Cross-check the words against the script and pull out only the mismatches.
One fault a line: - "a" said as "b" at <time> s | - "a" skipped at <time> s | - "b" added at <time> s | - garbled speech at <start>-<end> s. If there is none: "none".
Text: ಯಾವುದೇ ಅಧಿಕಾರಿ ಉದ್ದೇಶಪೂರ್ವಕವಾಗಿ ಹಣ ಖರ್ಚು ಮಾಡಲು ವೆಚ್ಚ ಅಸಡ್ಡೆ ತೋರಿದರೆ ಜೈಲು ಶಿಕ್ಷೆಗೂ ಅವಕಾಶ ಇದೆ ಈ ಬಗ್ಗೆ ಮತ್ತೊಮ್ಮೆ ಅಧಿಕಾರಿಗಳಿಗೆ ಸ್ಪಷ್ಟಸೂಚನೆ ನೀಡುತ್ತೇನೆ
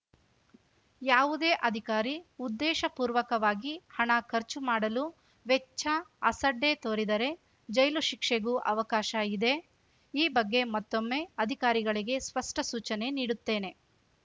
none